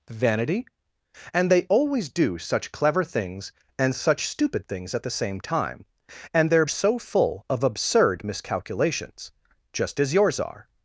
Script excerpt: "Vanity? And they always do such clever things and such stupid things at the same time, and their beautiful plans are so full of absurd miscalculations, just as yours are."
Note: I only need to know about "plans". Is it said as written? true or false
false